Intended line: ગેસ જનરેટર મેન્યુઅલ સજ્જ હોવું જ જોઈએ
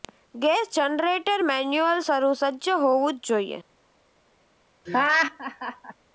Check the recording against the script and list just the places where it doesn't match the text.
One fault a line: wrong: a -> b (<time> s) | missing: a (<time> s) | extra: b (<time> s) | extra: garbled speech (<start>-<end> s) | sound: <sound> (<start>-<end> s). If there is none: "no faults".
extra: શરૂ (2.0 s)
sound: laugh (4.9-5.9 s)